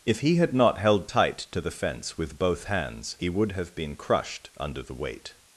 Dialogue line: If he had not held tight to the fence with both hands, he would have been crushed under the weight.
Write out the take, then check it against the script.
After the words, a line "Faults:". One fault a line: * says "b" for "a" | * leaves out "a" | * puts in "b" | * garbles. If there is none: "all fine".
If he had not held tight to the fence with both hands, he would have been crushed under the weight.
Faults:
all fine